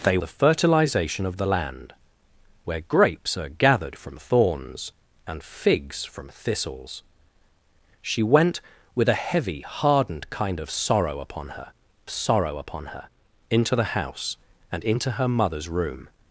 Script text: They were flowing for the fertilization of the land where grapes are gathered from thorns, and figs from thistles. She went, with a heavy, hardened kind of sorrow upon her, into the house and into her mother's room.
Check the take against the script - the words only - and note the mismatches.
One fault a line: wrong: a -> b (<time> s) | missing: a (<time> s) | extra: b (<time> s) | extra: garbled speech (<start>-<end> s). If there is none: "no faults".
missing: were flowing for (0.2 s)
extra: sorrow upon her (12.1 s)